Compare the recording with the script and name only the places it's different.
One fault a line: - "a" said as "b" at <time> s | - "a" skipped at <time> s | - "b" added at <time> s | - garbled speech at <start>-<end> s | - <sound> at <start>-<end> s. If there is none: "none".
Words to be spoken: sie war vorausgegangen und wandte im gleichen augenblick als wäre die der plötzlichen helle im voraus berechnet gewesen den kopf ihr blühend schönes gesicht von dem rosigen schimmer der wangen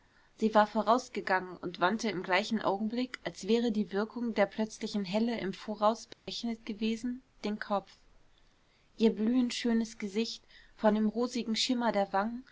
- "wirkung" added at 3.9 s
- dropout at 6.1-6.3 s